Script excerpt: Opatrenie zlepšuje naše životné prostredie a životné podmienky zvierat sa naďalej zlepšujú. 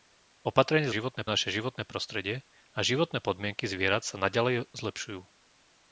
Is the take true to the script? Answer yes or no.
no